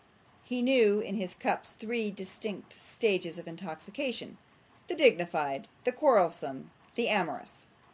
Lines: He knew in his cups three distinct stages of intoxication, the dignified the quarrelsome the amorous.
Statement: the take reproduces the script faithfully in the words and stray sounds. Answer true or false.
true